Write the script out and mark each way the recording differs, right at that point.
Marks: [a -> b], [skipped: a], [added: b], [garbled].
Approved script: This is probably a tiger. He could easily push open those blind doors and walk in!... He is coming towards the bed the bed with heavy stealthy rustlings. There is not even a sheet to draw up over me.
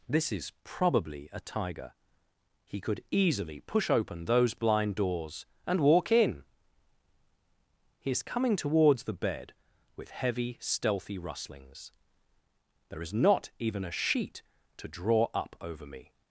This is probably a tiger. He could easily push open those blind doors and walk in!... He is coming towards the bed [skipped: the bed] with heavy stealthy rustlings. There is not even a sheet to draw up over me.